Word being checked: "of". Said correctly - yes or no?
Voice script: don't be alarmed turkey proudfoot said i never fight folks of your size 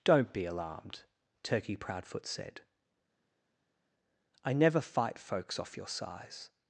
no